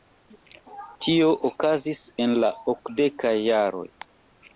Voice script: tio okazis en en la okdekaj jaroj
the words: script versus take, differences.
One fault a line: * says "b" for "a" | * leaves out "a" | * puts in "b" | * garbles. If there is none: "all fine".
* leaves out "en"